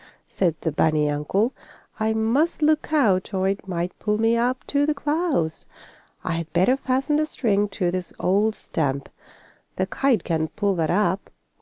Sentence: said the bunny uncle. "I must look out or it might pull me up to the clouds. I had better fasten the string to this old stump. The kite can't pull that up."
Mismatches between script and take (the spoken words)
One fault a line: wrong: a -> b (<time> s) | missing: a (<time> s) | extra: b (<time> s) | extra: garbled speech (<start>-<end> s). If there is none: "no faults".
no faults